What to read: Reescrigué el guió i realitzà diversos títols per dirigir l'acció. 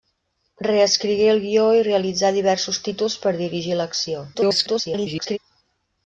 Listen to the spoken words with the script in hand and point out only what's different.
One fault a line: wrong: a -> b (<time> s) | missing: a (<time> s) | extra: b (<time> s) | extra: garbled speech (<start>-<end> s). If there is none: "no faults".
extra: garbled speech (4.3-5.4 s)